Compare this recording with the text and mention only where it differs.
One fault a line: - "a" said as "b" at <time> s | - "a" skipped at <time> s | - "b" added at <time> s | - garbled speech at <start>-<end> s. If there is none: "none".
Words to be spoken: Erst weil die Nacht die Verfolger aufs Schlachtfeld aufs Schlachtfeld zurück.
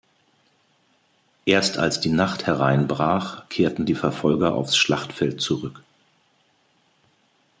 - "weil" said as "als" at 1.8 s
- "hereinbrach kehrten" added at 2.5 s
- "aufs Schlachtfeld" skipped at 5.4 s